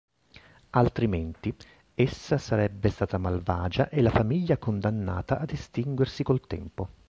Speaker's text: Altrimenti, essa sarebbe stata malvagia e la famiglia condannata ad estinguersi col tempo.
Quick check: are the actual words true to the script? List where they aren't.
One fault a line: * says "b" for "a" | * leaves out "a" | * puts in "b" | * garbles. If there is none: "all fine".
all fine